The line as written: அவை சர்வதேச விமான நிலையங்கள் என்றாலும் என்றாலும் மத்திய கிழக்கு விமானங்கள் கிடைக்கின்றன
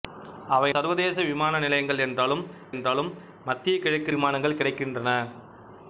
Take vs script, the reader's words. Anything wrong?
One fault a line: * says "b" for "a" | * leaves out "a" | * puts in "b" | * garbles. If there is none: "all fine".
all fine